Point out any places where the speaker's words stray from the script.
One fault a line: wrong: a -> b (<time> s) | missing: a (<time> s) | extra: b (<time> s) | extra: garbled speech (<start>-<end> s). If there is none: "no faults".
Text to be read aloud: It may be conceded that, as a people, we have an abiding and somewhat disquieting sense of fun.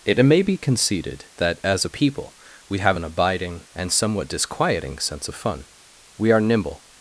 extra: We are nimble (6.2 s)